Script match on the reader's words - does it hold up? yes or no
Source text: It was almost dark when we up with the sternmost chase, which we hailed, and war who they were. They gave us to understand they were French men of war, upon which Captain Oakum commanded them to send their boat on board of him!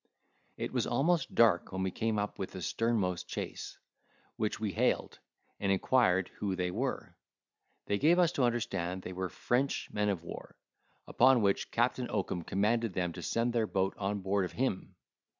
no